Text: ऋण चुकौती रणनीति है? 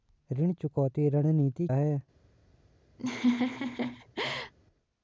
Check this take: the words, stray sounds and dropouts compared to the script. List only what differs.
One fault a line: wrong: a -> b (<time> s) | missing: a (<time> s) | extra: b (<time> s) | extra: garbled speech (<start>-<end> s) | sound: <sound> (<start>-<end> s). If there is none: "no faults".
sound: laugh (3.0-4.5 s)